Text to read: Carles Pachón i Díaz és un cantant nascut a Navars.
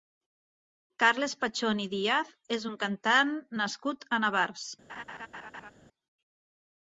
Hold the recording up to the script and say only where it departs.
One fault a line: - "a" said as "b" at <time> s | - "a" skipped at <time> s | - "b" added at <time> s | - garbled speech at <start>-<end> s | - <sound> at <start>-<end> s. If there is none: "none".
- laugh at 4.9-5.7 s